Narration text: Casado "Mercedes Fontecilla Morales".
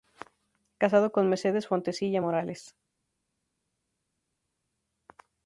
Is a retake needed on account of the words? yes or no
yes